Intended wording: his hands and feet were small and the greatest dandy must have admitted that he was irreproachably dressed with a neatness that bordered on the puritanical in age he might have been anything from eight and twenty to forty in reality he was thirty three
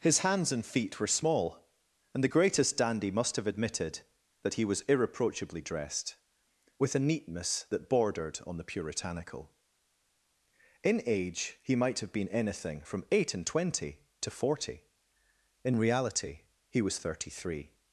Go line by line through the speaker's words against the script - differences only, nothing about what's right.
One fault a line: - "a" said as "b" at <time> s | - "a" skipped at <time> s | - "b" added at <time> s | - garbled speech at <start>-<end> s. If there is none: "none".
none